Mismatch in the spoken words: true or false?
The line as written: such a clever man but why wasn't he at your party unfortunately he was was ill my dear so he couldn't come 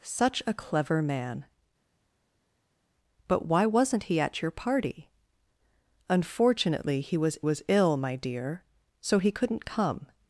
false